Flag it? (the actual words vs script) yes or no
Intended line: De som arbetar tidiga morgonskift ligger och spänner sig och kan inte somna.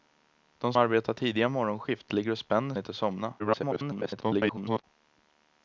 yes